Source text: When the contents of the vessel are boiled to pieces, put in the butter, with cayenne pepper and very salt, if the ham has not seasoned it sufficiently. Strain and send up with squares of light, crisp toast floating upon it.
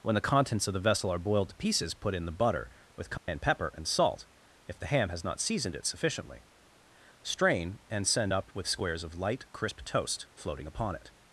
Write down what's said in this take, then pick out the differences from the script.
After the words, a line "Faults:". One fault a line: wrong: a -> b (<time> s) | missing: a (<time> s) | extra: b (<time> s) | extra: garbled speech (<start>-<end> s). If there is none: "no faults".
When the contents of the vessel are boiled to pieces, put in the butter, with cayenne pepper and salt, if the ham has not seasoned it sufficiently. Strain and send up with squares of light, crisp toast floating upon it.
Faults:
missing: very (3.9 s)